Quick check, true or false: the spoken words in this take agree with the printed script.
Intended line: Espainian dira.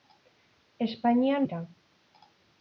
true